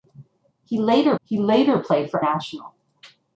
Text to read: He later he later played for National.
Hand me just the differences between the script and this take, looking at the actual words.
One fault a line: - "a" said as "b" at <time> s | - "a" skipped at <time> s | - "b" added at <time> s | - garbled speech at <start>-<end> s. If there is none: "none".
none